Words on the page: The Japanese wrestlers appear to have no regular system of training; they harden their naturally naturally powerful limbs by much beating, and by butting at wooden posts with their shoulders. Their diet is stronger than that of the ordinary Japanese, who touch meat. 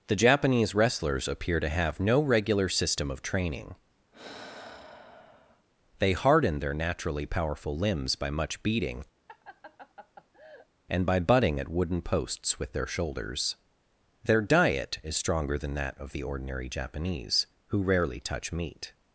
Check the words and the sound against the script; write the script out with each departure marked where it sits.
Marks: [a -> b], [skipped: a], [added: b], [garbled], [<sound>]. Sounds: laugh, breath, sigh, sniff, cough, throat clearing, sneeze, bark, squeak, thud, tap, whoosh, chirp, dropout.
The Japanese wrestlers appear to have no regular system of training; [sigh] they harden their naturally [skipped: naturally] powerful limbs by much beating, [laugh] and by butting at wooden posts with their shoulders. Their diet is stronger than that of the ordinary Japanese, who [added: rarely] touch meat.